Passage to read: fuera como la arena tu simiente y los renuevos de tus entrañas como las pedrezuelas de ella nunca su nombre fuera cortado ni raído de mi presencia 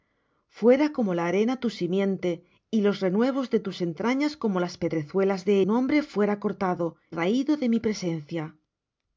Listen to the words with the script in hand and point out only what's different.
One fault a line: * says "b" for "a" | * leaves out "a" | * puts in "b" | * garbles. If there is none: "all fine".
* leaves out "ella nunca su"
* leaves out "ni"